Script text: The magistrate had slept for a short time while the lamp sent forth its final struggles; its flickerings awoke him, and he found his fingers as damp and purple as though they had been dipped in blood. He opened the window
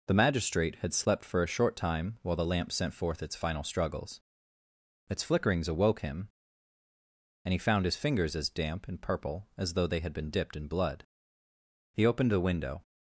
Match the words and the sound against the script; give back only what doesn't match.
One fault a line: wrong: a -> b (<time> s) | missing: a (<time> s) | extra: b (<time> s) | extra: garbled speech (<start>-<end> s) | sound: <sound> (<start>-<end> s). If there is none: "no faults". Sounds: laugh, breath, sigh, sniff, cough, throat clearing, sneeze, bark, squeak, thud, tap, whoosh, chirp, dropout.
no faults